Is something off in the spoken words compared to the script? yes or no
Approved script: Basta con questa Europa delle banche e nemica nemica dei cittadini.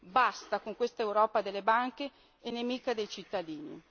yes